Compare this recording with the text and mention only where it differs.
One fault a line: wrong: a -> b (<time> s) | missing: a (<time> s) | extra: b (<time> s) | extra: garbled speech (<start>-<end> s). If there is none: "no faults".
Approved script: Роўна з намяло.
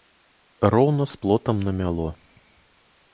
extra: плотам (1.2 s)